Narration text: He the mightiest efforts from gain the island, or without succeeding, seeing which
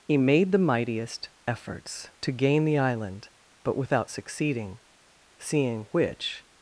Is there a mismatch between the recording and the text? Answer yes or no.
yes